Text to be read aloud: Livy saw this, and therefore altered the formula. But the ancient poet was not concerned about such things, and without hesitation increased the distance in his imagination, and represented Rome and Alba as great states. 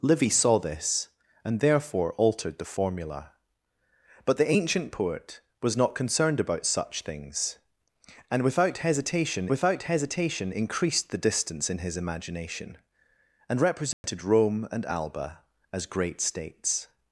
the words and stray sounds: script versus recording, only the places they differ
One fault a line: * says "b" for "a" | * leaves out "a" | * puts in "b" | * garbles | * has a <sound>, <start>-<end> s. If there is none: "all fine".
* puts in "without hesitation"
* has a dropout, 13.9-14.0 s